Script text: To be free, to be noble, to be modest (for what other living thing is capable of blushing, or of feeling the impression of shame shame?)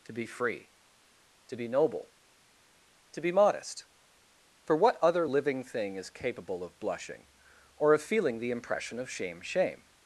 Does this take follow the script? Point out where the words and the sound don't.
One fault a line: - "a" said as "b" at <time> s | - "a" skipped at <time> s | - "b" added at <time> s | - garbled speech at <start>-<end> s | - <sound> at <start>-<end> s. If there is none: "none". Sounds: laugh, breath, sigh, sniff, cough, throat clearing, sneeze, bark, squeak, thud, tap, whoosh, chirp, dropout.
none